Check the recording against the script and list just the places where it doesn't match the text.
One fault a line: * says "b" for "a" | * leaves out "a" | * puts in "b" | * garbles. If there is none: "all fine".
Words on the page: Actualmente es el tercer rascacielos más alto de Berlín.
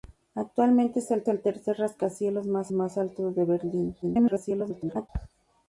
* puts in "el"
* puts in "más"
* garbles